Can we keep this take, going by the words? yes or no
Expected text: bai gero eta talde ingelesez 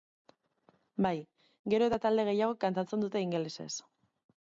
no